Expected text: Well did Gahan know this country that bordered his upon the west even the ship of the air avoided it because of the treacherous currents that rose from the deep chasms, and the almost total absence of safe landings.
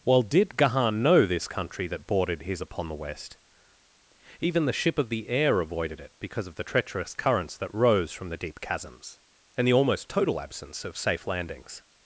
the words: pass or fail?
pass